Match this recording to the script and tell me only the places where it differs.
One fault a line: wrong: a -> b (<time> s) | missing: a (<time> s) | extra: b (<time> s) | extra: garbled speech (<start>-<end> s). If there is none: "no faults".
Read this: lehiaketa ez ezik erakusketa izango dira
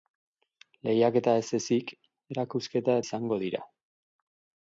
no faults